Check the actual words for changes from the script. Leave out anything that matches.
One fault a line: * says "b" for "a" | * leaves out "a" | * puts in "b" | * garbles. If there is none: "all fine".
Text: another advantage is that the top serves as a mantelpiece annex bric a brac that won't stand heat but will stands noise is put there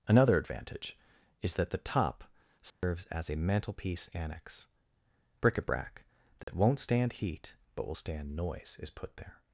* says "stand" for "stands"